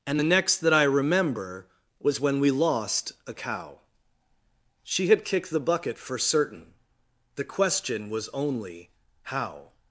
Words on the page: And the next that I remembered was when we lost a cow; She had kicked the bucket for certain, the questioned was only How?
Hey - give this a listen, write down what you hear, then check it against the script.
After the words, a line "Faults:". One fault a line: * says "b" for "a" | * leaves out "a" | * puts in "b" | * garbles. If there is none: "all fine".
And the next that I remember was when we lost a cow; She had kicked the bucket for certain, the question was only How?
Faults:
* says "remember" for "remembered"
* says "question" for "questioned"